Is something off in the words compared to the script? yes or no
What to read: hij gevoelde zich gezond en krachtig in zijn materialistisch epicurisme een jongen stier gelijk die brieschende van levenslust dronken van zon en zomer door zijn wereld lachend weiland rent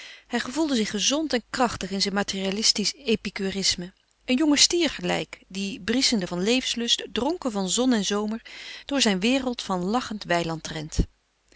yes